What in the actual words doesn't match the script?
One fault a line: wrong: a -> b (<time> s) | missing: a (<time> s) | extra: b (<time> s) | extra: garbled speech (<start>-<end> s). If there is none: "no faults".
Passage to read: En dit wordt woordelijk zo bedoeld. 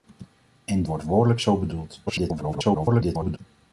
missing: dit (0.8 s)
extra: garbled speech (2.1-3.4 s)